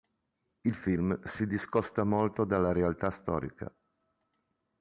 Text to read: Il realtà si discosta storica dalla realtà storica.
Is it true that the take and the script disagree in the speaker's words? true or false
true